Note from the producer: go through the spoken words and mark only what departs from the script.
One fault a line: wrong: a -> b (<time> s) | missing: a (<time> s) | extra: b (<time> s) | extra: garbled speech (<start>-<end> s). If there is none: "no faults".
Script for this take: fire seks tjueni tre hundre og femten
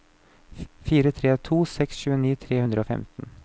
extra: tre to (1.2 s)